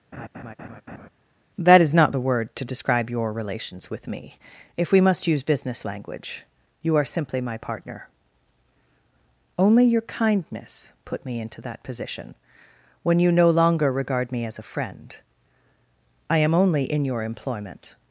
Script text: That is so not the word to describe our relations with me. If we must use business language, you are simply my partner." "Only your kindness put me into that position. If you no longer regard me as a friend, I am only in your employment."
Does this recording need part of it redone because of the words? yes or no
yes